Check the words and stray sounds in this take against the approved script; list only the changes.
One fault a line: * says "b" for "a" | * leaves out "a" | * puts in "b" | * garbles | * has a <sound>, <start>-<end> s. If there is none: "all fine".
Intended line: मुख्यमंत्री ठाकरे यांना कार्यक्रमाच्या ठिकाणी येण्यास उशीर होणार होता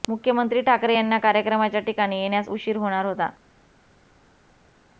all fine